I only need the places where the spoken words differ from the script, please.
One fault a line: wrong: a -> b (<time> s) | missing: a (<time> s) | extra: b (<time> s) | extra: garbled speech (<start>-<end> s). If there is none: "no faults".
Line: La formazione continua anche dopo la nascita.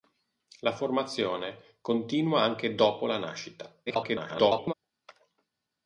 extra: garbled speech (3.9-4.7 s)